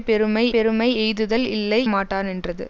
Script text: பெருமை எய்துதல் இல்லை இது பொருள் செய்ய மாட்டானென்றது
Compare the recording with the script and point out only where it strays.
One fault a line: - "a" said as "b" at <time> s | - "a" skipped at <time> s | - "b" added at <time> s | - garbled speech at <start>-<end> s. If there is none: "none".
- "பெருமை" added at 0.5 s
- "இது பொருள் செய்ய" skipped at 1.8 s